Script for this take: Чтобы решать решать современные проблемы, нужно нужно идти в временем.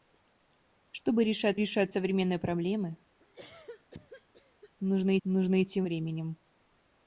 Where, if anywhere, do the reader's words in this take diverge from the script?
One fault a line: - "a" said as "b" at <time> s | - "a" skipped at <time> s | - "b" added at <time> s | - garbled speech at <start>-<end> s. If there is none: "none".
none